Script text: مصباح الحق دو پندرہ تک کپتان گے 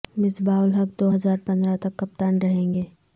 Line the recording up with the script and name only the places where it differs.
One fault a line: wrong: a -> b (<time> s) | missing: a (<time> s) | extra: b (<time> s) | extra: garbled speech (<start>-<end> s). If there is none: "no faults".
extra: ہزار (1.1 s)
extra: رہیں (2.4 s)